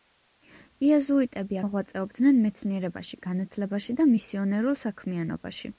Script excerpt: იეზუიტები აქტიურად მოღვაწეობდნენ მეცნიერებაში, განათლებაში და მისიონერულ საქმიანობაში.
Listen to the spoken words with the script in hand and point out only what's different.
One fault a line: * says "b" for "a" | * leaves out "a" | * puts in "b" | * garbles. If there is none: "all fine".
* leaves out "აქტიურად"